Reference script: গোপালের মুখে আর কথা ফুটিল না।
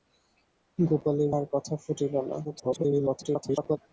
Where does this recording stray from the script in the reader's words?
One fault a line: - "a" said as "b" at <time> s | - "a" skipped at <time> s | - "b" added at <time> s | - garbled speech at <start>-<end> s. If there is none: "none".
- "মুখে" skipped at 1.3 s
- garbled speech at 2.4-3.8 s